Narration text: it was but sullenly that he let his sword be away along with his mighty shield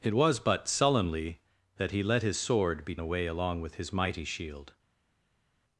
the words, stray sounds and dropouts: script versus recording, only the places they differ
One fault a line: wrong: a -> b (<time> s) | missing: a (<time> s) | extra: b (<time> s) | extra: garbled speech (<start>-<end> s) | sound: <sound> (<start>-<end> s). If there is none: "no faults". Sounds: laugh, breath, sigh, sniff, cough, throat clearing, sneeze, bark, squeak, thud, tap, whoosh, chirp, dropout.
no faults